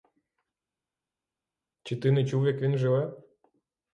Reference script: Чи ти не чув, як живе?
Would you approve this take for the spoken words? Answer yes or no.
no